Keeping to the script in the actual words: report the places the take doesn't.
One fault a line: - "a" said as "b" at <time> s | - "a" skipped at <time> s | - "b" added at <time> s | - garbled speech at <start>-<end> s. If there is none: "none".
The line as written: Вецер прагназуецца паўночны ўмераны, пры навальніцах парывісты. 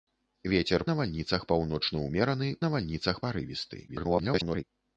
- "прагназуецца" said as "навальніцах" at 0.9 s
- "пры" skipped at 2.5 s
- garbled speech at 3.9-4.6 s